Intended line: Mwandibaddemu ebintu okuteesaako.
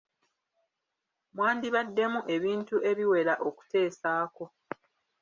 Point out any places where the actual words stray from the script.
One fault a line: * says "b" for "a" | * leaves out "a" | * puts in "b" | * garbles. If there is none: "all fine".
* puts in "ebiwera"